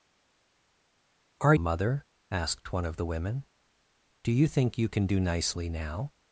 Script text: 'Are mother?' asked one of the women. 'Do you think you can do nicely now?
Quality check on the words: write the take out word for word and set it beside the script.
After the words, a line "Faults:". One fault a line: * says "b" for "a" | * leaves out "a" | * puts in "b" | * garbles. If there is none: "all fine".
'Are mother?' asked one of the women. 'Do you think you can do nicely now?
Faults:
all fine